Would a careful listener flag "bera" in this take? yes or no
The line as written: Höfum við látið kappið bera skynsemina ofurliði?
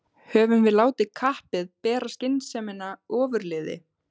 no